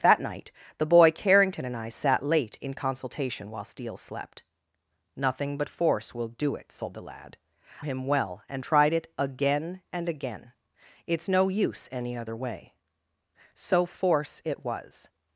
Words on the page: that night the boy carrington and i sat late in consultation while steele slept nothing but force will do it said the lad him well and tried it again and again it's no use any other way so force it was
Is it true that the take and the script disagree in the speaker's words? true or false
false